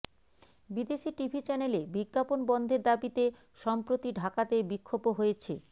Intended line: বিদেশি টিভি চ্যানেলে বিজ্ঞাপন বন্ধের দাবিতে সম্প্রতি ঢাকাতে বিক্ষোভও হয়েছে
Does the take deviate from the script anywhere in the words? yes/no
no